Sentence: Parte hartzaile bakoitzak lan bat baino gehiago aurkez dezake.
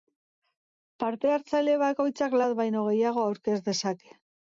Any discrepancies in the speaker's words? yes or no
yes